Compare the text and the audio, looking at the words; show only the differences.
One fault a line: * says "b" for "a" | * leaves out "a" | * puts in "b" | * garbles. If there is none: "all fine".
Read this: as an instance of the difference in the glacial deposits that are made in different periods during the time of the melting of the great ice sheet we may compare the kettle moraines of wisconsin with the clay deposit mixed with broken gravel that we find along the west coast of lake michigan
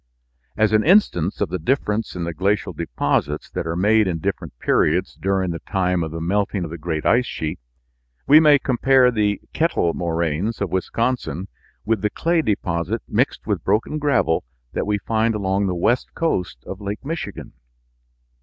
all fine